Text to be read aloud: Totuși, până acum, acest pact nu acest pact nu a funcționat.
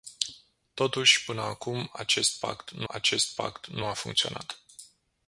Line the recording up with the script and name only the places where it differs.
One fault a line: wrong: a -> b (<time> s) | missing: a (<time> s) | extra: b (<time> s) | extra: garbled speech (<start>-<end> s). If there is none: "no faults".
no faults